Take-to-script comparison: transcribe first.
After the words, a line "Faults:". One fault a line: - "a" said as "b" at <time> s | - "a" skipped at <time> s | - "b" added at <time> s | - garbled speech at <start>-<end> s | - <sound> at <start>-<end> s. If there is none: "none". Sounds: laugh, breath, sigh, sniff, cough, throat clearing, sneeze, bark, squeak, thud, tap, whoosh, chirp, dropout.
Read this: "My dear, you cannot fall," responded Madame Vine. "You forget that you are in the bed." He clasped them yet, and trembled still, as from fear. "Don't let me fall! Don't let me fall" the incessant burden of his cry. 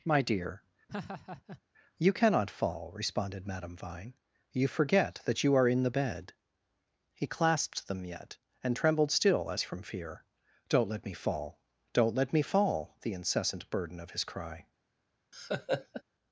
"My dear, you cannot fall," responded Madame Vine. "You forget that you are in the bed." He clasped them yet, and trembled still, as from fear. "Don't let me fall! Don't let me fall" the incessant burden of his cry.
Faults:
- laugh at 0.9-1.6 s
- laugh at 15.3-16.0 s